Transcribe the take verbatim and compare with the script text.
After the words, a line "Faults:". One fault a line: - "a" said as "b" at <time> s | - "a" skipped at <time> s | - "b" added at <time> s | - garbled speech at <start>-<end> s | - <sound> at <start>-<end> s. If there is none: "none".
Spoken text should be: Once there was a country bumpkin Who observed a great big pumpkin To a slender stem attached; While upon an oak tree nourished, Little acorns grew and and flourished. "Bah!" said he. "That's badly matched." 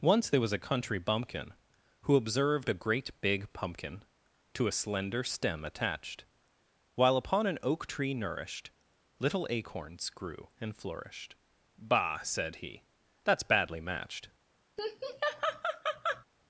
Once there was a country bumpkin Who observed a great big pumpkin To a slender stem attached; While upon an oak tree nourished, Little acorns grew and flourished. "Bah!" said he. "That's badly matched."
Faults:
- "and" skipped at 10.8 s
- laugh at 14.8-16.2 s